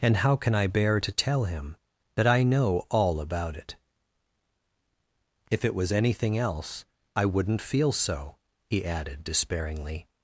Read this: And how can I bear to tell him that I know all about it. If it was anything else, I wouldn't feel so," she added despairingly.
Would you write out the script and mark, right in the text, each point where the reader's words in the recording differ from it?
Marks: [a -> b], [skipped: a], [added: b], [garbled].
And how can I bear to tell him that I know all about it. If it was anything else, I wouldn't feel so," [she -> he] added despairingly.